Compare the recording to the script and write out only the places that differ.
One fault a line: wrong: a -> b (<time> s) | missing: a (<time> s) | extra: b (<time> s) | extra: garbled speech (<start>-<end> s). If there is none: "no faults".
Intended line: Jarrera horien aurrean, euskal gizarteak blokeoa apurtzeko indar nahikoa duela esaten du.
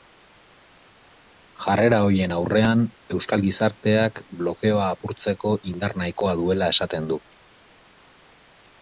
no faults